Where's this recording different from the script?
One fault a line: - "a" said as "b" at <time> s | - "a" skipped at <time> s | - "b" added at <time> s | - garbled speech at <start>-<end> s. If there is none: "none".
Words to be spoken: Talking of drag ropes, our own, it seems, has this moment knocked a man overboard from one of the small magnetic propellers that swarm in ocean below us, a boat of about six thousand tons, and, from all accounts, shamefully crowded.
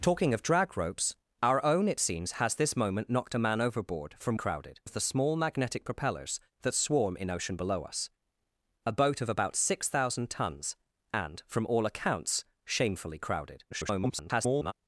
- "one" said as "crowded" at 4.3 s
- garbled speech at 13.7-14.7 s